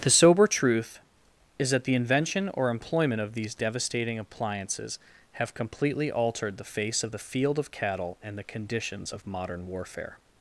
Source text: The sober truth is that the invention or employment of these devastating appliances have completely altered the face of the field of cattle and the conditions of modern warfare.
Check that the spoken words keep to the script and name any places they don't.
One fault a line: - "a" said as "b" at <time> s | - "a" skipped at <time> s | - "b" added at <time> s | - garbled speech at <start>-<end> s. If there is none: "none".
none